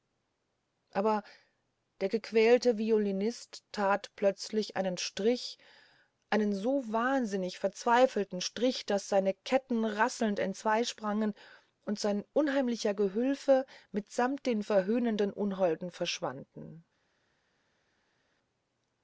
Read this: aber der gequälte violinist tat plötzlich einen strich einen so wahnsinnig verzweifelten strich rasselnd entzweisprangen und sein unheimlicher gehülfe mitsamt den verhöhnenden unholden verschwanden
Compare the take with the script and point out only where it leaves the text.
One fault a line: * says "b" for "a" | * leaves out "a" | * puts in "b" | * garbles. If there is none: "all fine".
* puts in "daß seine ketten"